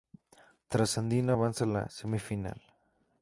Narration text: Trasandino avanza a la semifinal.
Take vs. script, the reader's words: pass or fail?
pass